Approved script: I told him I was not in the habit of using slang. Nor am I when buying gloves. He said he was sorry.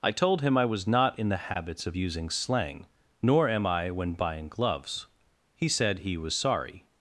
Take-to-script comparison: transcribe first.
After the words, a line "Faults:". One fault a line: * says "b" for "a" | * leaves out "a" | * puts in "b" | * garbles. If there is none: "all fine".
I told him I was not in the habits of using slang. Nor am I when buying gloves. He said he was sorry.
Faults:
* says "habits" for "habit"